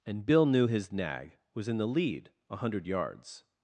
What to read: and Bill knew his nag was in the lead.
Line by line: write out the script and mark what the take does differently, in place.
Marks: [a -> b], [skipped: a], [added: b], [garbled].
and Bill knew his nag was in the lead. [added: A hundred yards]